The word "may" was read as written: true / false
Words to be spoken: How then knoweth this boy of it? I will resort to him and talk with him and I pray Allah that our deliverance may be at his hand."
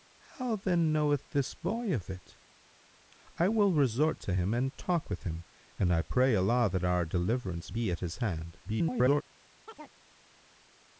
false